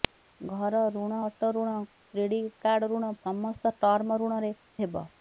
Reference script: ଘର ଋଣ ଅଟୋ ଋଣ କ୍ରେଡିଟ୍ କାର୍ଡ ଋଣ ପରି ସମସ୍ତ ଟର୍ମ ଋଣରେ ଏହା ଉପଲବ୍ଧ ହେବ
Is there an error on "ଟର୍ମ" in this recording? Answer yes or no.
no